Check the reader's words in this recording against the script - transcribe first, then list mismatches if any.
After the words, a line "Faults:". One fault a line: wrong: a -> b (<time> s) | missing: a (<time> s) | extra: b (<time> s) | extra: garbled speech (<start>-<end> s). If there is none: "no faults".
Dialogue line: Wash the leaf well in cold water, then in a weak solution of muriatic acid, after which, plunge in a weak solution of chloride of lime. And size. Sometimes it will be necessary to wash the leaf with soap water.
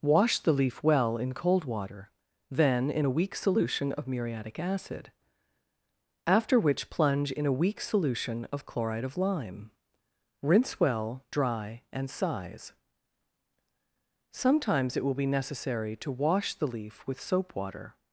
Wash the leaf well in cold water, then in a weak solution of muriatic acid, after which, plunge in a weak solution of chloride of lime. Rinse well, dry, and size. Sometimes it will be necessary to wash the leaf with soap water.
Faults:
extra: Rinse well dry (10.4 s)